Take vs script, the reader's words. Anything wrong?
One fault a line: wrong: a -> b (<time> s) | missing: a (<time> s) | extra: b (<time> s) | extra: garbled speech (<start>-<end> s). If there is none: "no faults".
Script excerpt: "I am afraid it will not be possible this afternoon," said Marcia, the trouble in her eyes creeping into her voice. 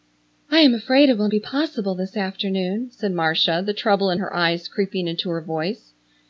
missing: not (1.3 s)